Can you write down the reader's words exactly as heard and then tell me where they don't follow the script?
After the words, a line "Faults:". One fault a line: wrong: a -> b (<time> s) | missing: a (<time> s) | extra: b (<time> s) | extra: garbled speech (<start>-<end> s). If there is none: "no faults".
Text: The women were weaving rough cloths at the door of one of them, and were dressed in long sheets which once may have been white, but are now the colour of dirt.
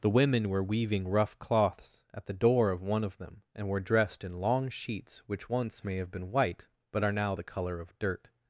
The women were weaving rough cloths at the door of one of them, and were dressed in long sheets which once may have been white, but are now the colour of dirt.
Faults:
no faults